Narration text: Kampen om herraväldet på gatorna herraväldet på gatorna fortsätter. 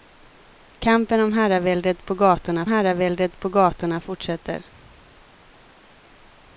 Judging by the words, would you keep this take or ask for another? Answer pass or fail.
pass